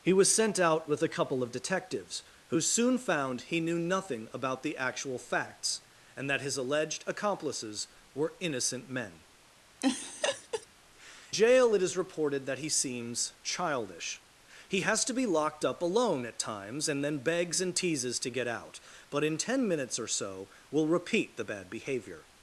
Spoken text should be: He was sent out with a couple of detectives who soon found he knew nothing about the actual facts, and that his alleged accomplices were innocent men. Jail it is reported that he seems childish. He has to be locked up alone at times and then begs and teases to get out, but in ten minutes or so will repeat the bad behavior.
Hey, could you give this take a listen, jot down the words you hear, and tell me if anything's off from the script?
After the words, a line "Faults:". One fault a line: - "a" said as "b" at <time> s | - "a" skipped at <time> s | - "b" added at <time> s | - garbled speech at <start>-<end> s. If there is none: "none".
He was sent out with a couple of detectives who soon found he knew nothing about the actual facts, and that his alleged accomplices were innocent men. Jail it is reported that he seems childish. He has to be locked up alone at times and then begs and teases to get out, but in ten minutes or so will repeat the bad behavior.
Faults:
none